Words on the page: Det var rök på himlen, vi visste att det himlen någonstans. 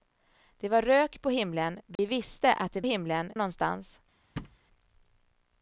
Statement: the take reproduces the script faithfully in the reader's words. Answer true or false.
true